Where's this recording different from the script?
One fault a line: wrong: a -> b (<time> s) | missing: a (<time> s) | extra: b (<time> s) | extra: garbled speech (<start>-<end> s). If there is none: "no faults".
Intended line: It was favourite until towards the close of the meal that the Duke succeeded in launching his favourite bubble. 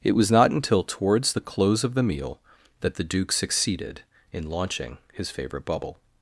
wrong: favourite -> not (0.3 s)